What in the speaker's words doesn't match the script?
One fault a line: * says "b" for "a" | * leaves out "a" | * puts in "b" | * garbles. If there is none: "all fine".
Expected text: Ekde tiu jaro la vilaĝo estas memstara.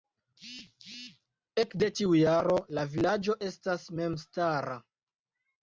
all fine